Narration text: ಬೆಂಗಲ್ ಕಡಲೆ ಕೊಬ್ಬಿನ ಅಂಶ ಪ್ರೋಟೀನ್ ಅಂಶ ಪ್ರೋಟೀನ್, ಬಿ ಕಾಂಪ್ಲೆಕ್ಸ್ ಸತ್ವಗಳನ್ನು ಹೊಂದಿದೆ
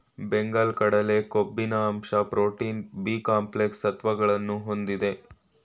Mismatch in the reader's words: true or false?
true